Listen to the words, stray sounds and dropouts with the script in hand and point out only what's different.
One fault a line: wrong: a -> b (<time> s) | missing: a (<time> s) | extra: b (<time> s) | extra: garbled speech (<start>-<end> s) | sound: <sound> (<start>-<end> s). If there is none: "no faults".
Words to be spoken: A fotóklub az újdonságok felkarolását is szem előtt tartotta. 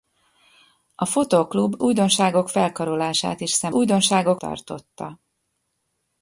missing: az (1.8 s)
wrong: előtt -> újdonságok (3.7 s)